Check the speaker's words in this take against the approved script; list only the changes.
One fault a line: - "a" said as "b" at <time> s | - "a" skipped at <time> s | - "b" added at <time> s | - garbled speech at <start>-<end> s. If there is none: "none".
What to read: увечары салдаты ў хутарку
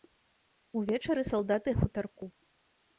none